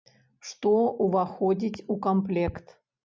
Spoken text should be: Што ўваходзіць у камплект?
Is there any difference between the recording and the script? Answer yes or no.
no